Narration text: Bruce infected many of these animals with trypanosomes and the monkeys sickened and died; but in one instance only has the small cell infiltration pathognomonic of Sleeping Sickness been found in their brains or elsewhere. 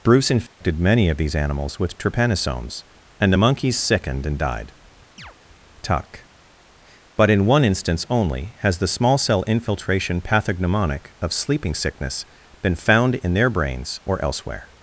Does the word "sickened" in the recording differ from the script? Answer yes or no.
no